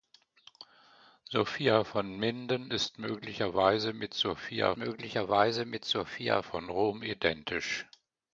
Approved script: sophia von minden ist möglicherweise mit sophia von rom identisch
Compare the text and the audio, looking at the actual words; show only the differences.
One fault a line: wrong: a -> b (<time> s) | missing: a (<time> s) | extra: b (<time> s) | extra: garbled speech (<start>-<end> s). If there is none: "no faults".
extra: möglicherweise mit sophia (4.8 s)